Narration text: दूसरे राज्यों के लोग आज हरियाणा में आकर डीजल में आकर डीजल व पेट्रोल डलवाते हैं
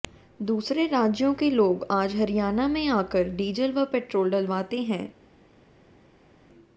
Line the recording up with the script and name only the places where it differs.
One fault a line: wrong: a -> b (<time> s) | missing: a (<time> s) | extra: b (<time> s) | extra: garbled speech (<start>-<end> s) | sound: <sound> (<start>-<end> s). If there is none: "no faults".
missing: में आकर डीजल (3.7 s)